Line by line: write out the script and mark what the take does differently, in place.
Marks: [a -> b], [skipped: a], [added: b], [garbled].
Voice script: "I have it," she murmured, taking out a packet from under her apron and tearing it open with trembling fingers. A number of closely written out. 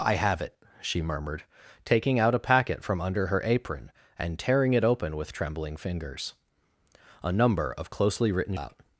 "I have it," she murmured, taking out a packet from under her apron and tearing it open with trembling fingers. A number of closely written out.